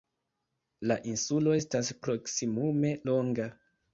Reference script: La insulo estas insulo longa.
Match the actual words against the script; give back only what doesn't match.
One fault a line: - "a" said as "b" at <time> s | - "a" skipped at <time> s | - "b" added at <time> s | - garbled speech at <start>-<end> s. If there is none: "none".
- "insulo" said as "proksimume" at 2.1 s